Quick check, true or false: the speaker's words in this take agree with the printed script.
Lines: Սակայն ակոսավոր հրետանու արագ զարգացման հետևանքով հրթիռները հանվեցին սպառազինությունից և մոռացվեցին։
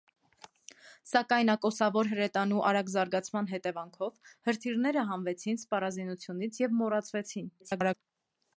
false